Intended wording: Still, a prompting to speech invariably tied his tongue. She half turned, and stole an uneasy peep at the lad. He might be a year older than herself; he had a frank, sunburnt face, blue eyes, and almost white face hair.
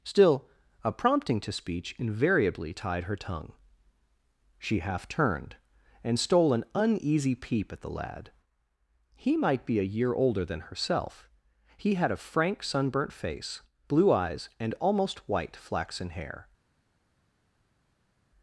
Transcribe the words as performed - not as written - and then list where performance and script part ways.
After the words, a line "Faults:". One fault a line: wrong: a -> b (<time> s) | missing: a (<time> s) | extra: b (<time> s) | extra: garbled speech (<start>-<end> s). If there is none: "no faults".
Still, a prompting to speech invariably tied her tongue. She half turned, and stole an uneasy peep at the lad. He might be a year older than herself; he had a frank, sunburnt face, blue eyes, and almost white flaxen hair.
Faults:
wrong: his -> her (3.0 s)
wrong: face -> flaxen (15.6 s)